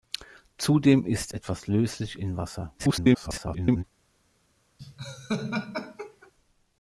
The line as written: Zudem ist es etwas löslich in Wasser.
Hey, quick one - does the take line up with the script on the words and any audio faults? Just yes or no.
no